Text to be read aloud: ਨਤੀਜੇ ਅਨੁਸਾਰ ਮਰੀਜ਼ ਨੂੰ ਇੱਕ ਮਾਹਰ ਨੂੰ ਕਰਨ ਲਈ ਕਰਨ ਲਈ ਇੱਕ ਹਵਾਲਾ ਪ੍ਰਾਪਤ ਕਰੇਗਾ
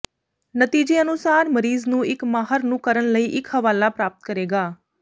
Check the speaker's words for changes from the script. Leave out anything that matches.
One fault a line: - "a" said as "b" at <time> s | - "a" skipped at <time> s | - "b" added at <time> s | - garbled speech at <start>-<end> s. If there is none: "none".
- "ਕਰਨ ਲਈ" skipped at 3.2 s